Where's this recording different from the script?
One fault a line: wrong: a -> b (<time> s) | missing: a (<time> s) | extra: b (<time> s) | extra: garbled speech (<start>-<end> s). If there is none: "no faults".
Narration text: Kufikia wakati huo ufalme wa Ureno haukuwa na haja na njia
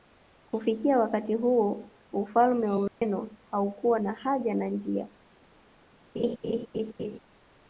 no faults